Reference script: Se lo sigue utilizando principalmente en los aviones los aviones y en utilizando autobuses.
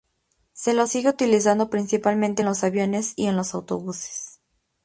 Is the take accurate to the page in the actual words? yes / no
no